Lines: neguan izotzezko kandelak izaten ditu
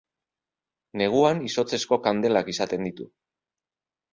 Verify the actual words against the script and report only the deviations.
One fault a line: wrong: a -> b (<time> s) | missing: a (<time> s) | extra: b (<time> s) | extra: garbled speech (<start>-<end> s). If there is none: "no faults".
no faults